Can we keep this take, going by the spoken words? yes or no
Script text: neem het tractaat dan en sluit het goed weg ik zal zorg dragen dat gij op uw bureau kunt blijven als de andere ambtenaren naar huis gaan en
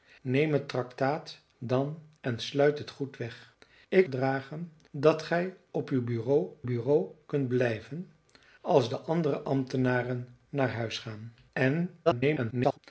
no